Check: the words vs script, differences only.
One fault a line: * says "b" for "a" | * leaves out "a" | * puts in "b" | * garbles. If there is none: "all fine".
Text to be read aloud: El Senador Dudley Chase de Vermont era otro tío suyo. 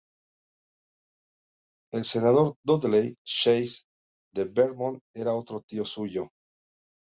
all fine